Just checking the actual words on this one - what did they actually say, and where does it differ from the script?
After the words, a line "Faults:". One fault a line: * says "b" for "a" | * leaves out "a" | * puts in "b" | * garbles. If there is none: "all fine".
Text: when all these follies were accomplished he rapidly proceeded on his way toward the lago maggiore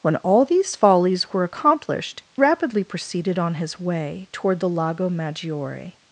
when all these follies were accomplished rapidly proceeded on his way toward the lago maggiore
Faults:
* leaves out "he"